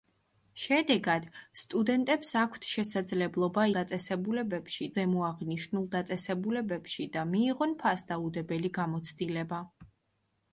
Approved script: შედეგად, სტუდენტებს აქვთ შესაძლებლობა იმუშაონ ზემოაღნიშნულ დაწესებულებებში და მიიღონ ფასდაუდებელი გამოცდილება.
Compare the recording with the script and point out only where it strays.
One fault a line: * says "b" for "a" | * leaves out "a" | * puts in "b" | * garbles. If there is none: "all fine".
* says "დაწესებულებებში" for "იმუშაონ"